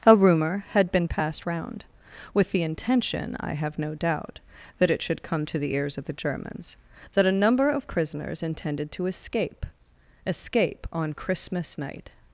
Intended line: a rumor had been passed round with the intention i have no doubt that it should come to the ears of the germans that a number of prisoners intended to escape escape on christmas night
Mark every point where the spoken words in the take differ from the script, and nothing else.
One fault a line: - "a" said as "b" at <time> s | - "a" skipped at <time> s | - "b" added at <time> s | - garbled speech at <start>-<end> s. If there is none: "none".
none